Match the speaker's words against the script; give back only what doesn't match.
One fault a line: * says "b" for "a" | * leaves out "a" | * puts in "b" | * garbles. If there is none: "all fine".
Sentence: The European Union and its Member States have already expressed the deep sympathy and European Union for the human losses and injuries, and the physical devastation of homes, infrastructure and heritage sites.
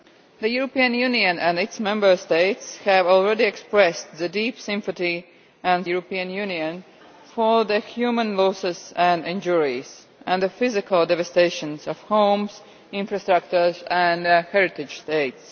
all fine